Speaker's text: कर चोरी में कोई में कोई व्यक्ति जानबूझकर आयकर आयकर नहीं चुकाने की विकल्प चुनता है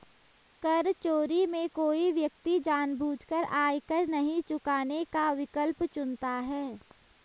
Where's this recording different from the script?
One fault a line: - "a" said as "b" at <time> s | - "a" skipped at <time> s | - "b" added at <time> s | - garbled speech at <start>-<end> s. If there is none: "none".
- "में कोई" skipped at 2.1 s
- "आयकर" skipped at 4.1 s
- "की" said as "का" at 5.1 s